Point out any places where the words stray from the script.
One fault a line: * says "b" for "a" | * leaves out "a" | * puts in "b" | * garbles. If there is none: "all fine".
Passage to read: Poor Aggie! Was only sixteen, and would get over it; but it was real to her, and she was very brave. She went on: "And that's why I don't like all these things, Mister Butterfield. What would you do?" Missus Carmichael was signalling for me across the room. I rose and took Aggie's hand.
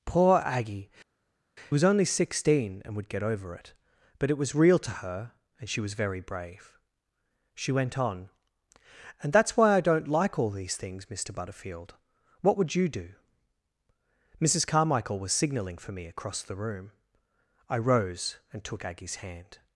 all fine